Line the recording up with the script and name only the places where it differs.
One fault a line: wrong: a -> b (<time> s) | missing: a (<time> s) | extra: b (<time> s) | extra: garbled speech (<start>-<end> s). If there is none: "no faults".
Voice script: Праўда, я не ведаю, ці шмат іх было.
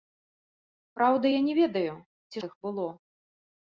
missing: шмат (2.4 s)